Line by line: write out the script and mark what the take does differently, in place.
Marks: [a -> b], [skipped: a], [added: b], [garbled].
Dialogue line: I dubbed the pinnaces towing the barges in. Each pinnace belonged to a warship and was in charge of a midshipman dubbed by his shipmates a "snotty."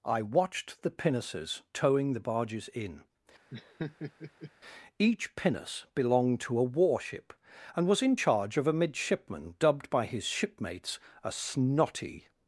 I [dubbed -> watched] the pinnaces towing the barges in. Each pinnace belonged to a warship and was in charge of a midshipman dubbed by his shipmates a "snotty."